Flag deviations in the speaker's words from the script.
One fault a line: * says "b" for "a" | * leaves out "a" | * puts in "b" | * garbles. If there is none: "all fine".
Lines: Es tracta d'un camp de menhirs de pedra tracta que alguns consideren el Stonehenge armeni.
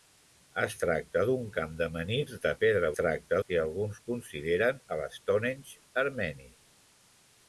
all fine